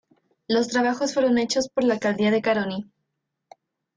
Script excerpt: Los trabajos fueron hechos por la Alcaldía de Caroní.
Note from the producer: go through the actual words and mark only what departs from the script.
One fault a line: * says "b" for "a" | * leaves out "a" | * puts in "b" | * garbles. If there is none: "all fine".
all fine